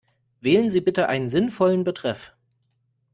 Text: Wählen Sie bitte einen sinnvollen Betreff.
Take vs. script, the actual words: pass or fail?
pass